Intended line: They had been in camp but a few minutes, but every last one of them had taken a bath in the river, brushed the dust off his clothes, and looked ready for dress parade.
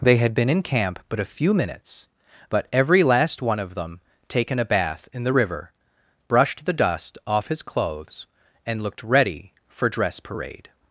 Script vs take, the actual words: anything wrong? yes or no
yes